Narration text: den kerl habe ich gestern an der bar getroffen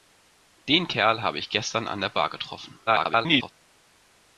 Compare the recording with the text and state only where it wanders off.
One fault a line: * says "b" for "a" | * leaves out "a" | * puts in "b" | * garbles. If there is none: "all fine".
* garbles